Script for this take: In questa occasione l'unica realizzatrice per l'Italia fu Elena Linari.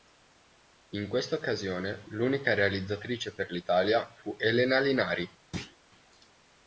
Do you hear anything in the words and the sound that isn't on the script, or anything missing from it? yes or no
yes